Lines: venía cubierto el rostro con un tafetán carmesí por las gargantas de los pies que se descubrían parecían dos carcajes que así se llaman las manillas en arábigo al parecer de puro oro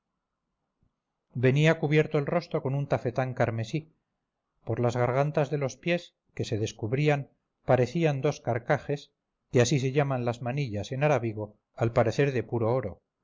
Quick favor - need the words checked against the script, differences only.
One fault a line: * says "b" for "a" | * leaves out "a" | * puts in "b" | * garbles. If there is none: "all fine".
all fine